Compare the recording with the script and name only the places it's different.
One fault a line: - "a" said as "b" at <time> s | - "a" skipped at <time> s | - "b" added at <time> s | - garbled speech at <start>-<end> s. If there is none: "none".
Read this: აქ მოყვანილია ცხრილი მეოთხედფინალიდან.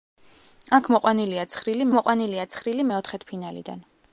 - "მოყვანილია ცხრილი" added at 2.0 s